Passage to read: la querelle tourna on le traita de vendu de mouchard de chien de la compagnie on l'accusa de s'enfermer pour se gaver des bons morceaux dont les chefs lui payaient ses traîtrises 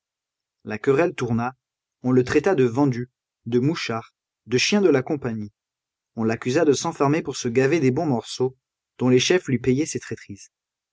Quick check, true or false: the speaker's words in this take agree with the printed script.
true